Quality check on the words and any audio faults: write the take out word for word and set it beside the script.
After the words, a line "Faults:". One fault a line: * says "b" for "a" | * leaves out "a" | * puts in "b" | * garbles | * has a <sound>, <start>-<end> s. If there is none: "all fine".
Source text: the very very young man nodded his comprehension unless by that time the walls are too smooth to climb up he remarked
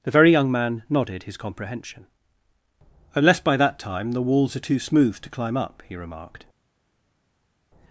the very young man nodded his comprehension unless by that time the walls are too smooth to climb up he remarked
Faults:
* leaves out "very"